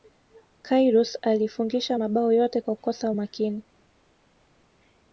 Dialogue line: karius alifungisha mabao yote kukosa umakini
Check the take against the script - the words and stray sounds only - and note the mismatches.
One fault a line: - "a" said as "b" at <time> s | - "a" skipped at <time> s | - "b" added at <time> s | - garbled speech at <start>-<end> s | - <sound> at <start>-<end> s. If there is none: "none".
- "kwa" added at 2.6 s